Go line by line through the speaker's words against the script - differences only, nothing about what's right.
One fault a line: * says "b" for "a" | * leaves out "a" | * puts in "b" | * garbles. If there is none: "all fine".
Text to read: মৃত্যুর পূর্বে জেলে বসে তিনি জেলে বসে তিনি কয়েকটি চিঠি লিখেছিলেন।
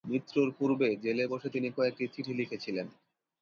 * leaves out "জেলে বসে তিনি"